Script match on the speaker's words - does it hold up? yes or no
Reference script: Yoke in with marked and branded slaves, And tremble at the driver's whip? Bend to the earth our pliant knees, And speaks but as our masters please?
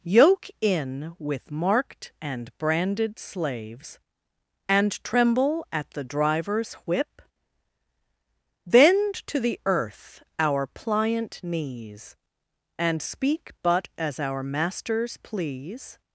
no